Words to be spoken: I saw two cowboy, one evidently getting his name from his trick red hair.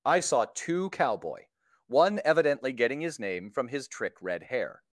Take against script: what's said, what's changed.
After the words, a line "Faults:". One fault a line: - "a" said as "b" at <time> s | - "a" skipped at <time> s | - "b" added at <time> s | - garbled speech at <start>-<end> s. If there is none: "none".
I saw two cowboy, one evidently getting his name from his trick red hair.
Faults:
none